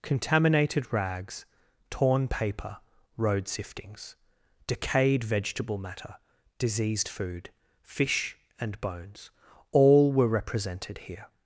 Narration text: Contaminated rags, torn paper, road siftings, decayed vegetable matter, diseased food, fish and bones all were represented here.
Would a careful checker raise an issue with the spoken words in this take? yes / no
no